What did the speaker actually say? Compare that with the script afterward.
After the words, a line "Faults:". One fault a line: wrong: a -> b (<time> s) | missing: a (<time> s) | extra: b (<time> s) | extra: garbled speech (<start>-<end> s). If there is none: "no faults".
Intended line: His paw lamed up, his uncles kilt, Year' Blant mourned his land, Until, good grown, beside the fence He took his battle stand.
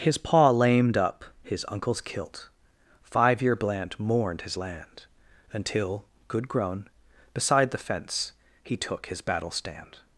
His paw lamed up, his uncles kilt, Five year' Blant mourned his land, Until, good grown, beside the fence He took his battle stand.
Faults:
extra: Five (3.0 s)